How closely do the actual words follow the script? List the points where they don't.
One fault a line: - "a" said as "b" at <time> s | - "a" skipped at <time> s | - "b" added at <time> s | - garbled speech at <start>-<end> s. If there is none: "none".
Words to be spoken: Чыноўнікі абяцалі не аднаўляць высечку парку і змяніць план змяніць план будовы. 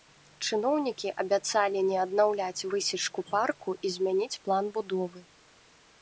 - "змяніць план" skipped at 4.6 s